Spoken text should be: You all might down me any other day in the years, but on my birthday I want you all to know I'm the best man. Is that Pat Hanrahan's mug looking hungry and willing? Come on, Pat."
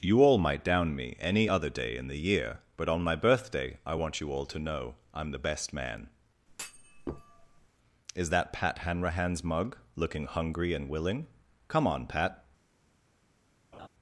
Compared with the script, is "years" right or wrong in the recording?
wrong